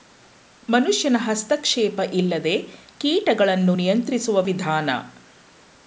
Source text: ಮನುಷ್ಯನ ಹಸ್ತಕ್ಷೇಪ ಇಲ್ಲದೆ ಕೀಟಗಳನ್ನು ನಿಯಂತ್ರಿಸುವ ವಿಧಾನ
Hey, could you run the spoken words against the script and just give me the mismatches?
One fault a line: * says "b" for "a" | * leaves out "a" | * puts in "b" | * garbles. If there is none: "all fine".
all fine